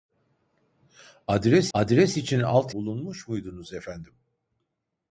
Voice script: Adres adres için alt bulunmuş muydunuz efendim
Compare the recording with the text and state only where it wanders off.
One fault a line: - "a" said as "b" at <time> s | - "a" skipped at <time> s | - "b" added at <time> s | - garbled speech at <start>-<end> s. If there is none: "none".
none